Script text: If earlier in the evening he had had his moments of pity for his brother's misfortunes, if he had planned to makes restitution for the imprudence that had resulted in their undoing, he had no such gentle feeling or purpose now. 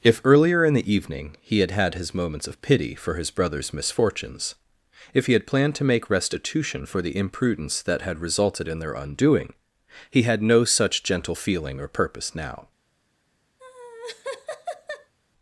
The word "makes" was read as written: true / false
false